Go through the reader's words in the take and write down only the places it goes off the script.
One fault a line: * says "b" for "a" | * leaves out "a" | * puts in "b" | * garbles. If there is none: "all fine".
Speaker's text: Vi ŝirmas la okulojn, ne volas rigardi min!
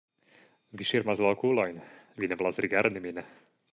* puts in "vi"